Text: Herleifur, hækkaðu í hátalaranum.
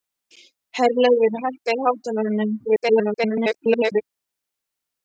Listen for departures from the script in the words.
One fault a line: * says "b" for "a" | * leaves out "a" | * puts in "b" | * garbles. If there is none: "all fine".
* garbles